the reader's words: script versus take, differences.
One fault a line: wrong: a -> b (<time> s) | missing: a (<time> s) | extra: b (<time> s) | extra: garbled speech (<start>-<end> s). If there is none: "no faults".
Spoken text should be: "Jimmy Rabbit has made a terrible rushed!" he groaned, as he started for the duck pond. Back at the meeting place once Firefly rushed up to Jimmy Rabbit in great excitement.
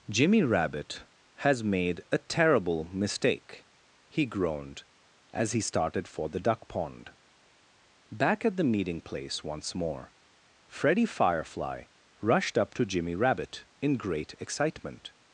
wrong: rushed -> mistake (2.9 s)
extra: more Freddie (9.8 s)